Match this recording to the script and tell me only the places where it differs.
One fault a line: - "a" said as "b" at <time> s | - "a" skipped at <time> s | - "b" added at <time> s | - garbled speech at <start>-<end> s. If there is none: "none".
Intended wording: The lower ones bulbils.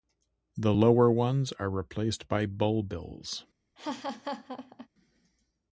- "are replaced by" added at 1.6 s